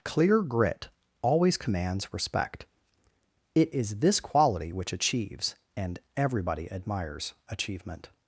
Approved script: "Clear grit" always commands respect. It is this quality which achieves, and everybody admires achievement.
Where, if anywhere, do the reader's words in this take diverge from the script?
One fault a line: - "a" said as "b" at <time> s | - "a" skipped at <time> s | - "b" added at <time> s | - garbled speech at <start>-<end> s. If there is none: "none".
none